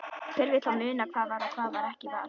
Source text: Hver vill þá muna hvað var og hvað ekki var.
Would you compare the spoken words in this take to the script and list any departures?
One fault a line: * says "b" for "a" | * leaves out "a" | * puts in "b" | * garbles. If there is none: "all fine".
all fine